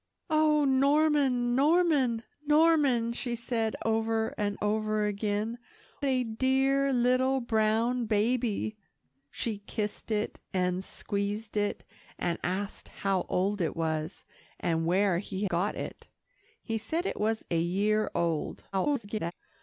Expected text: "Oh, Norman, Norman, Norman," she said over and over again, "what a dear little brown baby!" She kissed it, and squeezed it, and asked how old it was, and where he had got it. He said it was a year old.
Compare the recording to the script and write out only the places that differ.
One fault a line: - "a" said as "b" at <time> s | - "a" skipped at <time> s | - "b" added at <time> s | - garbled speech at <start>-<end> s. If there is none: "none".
- "what" skipped at 5.6 s
- "had" skipped at 15.4 s
- garbled speech at 18.7-19.3 s